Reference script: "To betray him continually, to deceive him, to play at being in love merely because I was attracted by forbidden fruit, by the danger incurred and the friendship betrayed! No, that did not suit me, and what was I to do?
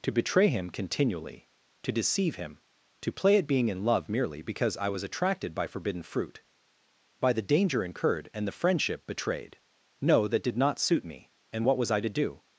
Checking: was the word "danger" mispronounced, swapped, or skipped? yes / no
no